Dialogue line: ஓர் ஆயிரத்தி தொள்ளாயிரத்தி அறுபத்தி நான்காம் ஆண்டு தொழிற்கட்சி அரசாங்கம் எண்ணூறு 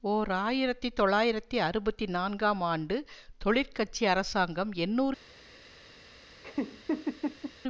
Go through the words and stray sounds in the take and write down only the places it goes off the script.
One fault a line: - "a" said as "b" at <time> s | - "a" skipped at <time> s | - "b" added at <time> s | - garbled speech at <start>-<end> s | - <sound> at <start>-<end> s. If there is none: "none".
- laugh at 6.4-7.5 s